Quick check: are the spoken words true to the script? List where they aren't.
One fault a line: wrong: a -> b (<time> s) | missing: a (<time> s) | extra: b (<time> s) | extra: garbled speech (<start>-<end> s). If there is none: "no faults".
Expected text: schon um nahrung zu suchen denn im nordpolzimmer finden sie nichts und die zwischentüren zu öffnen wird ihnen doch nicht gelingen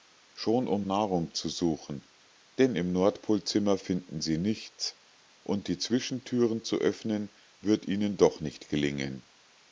no faults